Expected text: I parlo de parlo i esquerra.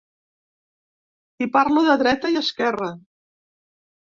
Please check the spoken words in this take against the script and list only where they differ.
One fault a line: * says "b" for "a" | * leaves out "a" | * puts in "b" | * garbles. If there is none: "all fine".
* says "dreta" for "parlo"